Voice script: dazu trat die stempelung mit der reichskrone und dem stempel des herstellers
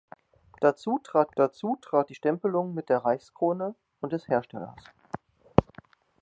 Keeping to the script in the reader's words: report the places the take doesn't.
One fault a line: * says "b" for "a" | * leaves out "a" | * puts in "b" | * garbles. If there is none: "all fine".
* puts in "dazu trat"
* leaves out "dem stempel"